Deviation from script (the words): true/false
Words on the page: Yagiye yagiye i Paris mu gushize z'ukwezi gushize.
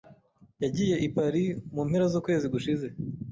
true